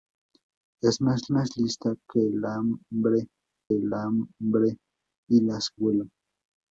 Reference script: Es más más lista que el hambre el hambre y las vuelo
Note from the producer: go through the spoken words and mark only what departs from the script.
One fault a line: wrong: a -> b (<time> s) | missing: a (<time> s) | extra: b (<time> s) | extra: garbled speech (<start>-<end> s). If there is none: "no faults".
no faults